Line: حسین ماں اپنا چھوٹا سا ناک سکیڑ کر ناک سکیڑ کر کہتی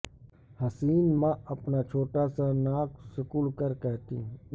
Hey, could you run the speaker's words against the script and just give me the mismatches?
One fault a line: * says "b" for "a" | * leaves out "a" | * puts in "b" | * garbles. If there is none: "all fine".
* leaves out "ناک سکیڑ کر"